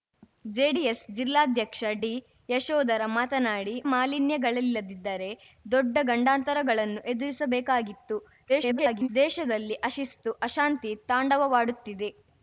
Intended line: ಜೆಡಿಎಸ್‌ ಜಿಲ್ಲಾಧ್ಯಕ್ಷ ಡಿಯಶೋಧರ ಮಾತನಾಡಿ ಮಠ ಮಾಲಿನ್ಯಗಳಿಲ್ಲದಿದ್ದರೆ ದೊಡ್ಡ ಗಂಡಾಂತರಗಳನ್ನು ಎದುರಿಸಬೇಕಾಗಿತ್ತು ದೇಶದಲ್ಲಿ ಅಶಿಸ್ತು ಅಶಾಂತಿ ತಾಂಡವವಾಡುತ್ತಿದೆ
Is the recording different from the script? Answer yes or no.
yes